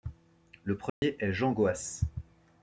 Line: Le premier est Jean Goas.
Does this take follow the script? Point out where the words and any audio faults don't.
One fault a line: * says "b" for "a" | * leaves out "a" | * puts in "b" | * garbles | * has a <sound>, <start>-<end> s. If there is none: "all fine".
* has a dropout, 0.9-1.0 s